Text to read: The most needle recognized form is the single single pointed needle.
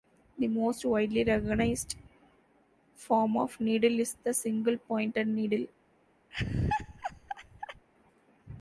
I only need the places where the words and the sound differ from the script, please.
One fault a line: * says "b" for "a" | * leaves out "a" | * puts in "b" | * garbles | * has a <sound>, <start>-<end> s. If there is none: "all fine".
* says "widely" for "needle"
* puts in "of needle"
* leaves out "single"
* has a laugh, 6.3-7.9 s